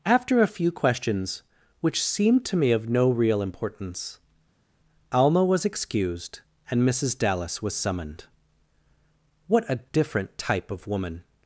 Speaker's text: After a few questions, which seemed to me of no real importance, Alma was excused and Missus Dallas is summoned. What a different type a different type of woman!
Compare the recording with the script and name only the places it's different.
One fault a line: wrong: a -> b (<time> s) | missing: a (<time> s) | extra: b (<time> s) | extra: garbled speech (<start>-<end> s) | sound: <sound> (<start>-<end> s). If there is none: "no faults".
wrong: is -> was (7.6 s)
missing: a different type (10.7 s)